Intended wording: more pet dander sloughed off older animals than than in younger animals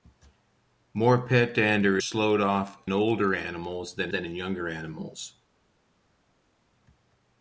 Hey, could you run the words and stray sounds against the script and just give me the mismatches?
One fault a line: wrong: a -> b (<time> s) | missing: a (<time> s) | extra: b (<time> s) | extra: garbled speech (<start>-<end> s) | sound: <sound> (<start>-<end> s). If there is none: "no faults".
no faults